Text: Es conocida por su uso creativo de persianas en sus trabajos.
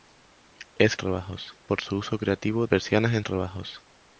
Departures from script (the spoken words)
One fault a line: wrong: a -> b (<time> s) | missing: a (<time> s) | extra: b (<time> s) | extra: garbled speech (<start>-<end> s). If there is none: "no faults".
wrong: conocida -> trabajos (1.0 s)
missing: de (2.7 s)
missing: sus (3.2 s)